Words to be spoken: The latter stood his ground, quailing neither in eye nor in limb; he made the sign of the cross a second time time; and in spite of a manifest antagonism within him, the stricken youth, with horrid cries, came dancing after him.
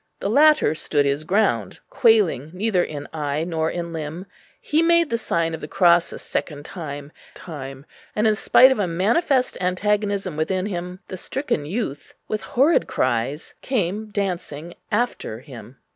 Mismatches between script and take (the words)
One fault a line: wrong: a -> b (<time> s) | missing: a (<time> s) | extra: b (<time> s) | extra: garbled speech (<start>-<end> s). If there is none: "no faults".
no faults